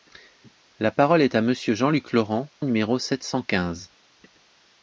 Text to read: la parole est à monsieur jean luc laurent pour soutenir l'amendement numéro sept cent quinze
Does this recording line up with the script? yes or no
no